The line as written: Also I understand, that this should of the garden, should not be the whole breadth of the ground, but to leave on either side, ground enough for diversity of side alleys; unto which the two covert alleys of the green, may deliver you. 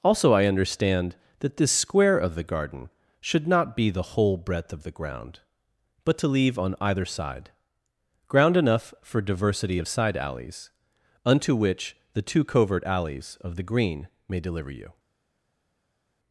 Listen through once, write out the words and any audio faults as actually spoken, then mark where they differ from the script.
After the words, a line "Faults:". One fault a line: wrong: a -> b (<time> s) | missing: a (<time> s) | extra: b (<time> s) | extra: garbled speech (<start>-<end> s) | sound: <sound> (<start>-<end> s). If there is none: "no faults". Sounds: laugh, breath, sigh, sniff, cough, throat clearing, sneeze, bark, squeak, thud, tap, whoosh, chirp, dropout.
Also I understand, that this square of the garden, should not be the whole breadth of the ground, but to leave on either side, ground enough for diversity of side alleys; unto which the two covert alleys of the green, may deliver you.
Faults:
wrong: should -> square (1.7 s)